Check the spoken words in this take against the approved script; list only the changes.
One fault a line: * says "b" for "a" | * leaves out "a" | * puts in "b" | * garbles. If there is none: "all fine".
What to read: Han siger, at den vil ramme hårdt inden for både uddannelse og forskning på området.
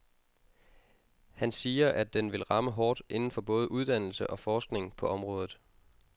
all fine